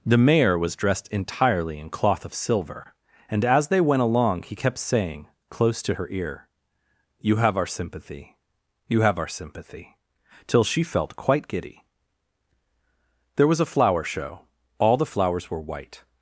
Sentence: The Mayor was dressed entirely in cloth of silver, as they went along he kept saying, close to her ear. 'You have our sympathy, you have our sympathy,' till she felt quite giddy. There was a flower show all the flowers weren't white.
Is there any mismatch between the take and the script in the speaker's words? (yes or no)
yes